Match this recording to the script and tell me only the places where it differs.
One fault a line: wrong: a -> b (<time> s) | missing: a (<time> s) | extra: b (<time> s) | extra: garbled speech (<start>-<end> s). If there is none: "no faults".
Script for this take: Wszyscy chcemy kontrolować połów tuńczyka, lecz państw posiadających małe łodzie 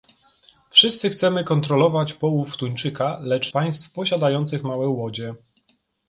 no faults